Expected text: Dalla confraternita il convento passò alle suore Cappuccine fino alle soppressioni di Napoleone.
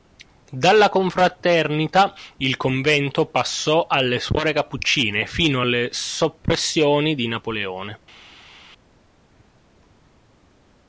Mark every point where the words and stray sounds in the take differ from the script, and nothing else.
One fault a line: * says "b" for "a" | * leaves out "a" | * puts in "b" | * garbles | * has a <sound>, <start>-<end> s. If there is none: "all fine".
all fine